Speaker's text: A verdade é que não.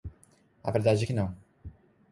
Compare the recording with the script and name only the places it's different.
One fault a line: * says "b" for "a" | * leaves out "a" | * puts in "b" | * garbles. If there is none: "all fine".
all fine